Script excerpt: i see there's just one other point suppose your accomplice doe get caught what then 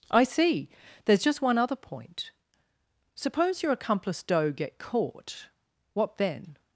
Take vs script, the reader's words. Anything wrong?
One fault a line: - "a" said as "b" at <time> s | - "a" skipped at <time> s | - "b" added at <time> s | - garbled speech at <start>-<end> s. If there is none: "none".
none